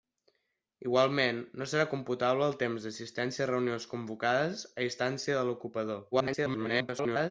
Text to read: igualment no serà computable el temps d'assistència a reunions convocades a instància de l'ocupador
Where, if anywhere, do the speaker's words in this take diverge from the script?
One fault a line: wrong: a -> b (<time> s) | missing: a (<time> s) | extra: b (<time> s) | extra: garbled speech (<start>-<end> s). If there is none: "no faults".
extra: garbled speech (6.1-7.3 s)